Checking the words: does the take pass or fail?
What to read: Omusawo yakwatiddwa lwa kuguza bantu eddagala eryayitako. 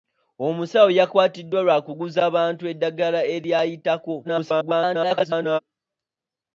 fail